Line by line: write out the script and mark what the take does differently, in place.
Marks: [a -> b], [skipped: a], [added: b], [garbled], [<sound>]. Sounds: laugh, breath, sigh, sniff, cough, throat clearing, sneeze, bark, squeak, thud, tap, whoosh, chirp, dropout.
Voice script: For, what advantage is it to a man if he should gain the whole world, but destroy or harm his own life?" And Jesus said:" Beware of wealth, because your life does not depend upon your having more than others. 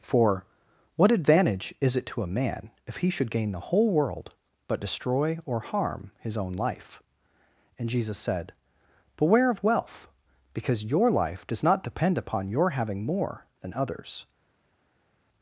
For, what advantage is it to a man if he should gain the whole world, but destroy or harm his own life?" And Jesus said:" Beware of wealth, because your life does not depend upon your having more than others.